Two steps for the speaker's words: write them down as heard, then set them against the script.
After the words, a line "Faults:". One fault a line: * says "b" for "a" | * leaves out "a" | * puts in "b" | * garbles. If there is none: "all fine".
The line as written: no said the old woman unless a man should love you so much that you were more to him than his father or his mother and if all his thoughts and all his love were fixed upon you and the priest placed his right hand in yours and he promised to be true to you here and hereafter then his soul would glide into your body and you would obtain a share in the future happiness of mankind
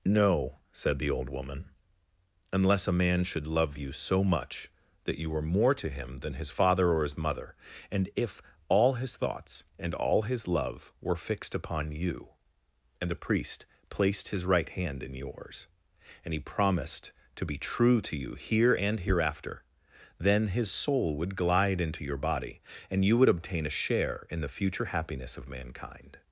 no said the old woman unless a man should love you so much that you were more to him than his father or his mother and if all his thoughts and all his love were fixed upon you and the priest placed his right hand in yours and he promised to be true to you here and hereafter then his soul would glide into your body and you would obtain a share in the future happiness of mankind
Faults:
all fine